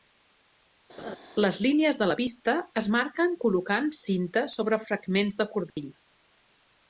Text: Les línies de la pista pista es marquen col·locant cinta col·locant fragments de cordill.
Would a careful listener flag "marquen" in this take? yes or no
no